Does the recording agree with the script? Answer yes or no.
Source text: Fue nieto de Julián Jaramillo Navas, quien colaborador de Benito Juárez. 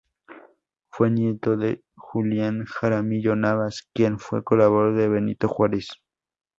no